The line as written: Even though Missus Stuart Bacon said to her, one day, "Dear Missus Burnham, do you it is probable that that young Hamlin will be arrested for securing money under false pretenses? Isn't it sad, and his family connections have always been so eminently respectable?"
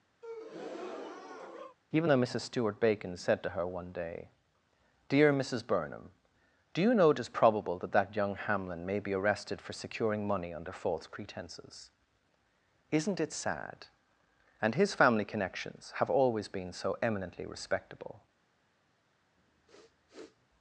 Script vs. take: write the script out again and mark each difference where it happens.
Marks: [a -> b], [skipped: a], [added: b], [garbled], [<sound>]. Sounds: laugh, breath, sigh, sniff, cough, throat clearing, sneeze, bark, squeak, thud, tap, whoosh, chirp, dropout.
[breath] Even though Missus Stuart Bacon said to her, one day, "Dear Missus Burnham, do you [added: know] it is probable that that young Hamlin [will -> may] be arrested for securing money under false pretenses? Isn't it sad, and his family connections have always been so eminently respectable?" [sniff]